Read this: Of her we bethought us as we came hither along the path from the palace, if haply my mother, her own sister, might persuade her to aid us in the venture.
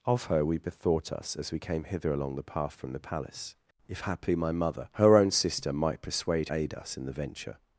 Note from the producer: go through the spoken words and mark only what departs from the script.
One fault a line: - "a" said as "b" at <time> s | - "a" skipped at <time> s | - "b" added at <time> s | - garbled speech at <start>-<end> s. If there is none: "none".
- "her to" skipped at 6.5 s